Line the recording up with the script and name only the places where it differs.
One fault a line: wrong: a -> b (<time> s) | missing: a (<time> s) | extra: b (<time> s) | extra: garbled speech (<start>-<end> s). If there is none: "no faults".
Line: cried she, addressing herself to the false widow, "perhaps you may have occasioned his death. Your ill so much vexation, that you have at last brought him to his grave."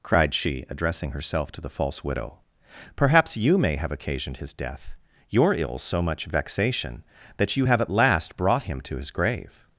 no faults